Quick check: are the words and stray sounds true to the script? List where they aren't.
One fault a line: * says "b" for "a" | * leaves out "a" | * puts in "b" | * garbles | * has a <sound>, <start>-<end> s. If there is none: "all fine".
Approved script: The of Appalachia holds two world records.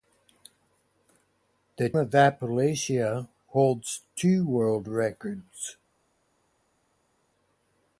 all fine